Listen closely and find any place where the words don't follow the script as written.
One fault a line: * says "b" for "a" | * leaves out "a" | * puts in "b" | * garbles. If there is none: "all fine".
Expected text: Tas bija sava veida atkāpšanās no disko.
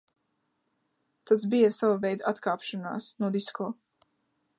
all fine